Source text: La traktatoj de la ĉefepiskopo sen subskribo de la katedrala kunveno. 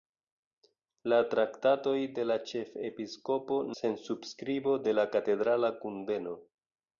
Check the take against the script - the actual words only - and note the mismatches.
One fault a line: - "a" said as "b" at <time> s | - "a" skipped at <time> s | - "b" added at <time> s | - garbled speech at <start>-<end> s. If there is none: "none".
none